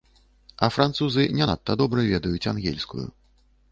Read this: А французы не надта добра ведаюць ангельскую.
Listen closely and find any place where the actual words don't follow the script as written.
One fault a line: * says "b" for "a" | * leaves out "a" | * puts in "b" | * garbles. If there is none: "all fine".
all fine